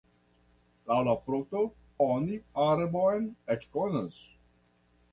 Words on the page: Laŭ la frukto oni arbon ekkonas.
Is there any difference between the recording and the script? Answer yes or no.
no